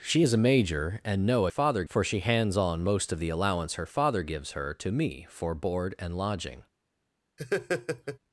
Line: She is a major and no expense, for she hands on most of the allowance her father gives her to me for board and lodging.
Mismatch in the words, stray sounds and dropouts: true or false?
true